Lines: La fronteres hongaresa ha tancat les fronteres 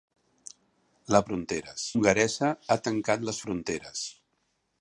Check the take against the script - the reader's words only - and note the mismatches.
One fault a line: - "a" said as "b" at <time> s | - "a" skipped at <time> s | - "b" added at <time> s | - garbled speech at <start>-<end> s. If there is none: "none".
none